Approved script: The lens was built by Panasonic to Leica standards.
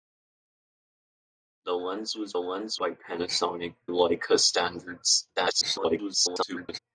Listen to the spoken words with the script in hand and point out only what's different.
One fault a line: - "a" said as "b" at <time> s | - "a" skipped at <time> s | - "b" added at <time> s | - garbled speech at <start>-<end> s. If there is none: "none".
- "built" said as "lens" at 2.4 s
- "to" skipped at 3.8 s
- garbled speech at 5.4-6.8 s